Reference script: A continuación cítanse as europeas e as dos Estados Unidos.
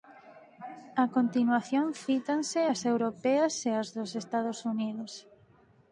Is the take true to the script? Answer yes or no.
yes